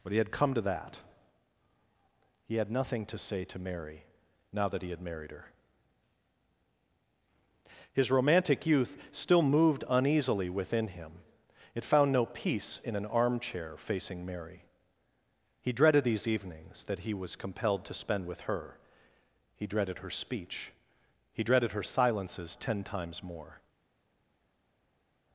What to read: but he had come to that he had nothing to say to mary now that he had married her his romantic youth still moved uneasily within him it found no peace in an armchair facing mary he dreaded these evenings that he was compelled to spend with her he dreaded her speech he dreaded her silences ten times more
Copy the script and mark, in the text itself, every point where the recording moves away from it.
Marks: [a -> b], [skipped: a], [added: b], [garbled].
but he had come to that he had nothing to say to mary now that he had married her his romantic youth still moved uneasily within him it found no peace in an armchair facing mary he dreaded these evenings that he was compelled to spend with her he dreaded her speech he dreaded her silences ten times more